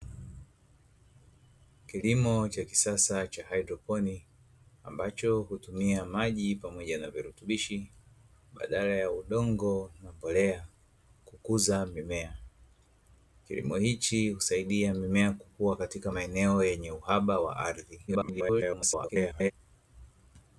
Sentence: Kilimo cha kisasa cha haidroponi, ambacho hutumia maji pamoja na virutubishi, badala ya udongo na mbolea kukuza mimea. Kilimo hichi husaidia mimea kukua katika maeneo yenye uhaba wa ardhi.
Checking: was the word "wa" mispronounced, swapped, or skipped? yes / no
no